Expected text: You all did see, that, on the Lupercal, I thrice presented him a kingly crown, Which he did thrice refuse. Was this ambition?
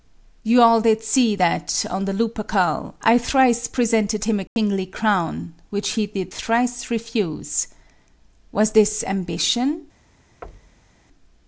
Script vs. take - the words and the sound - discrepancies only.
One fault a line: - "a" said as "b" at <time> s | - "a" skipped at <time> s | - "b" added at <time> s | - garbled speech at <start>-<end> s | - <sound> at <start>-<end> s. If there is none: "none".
- dropout at 4.5-4.6 s
- thud at 10.4-11.0 s